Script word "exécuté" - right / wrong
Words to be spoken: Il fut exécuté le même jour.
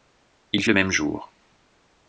wrong